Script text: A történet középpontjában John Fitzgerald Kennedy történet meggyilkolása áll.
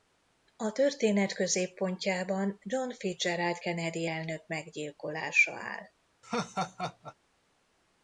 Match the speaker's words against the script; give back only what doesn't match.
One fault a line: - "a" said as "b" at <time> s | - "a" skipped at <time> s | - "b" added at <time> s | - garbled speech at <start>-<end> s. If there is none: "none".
- "történet" said as "elnök" at 4.1 s